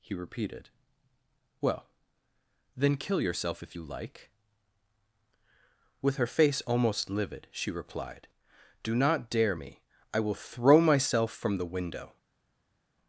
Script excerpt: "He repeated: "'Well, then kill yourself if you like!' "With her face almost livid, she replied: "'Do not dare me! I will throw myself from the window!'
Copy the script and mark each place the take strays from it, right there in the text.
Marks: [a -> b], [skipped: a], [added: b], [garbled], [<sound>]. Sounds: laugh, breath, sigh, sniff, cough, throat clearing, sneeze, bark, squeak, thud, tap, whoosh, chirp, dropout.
"He repeated: "'Well, then kill yourself if you like!' "With her face almost livid, she replied: "'Do not dare me! I will throw myself from the window!'